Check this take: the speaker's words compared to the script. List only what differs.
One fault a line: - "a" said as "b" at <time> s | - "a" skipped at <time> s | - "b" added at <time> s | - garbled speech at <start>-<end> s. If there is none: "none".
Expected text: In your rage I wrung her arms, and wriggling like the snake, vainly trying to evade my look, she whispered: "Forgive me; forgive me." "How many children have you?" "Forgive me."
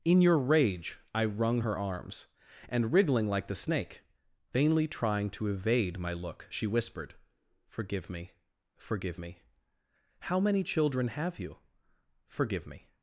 none